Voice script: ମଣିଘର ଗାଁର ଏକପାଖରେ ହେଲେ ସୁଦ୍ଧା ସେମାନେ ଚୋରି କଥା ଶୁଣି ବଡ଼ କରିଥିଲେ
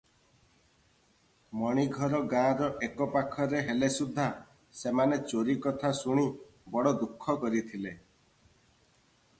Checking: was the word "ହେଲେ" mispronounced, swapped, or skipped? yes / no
no